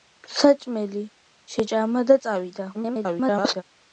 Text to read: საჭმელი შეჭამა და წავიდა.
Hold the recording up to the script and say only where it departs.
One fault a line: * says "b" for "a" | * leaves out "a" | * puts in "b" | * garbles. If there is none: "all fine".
* garbles